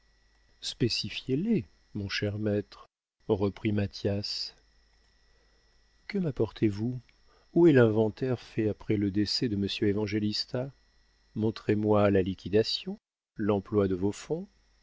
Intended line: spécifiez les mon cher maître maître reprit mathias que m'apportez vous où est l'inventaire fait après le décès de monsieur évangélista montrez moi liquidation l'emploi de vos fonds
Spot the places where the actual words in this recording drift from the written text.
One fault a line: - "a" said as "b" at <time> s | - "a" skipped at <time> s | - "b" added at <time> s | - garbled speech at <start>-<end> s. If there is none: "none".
- "maître" skipped at 2.9 s
- "la" added at 12.1 s